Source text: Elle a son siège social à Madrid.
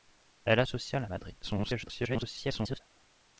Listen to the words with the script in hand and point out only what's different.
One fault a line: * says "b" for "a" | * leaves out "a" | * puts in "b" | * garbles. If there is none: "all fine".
* leaves out "son siège"
* garbles